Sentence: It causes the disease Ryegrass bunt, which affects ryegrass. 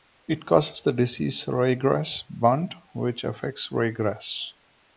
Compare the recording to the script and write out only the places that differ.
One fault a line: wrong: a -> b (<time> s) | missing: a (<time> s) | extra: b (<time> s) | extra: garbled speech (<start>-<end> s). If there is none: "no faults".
no faults